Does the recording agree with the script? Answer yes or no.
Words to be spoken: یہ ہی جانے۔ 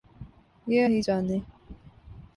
yes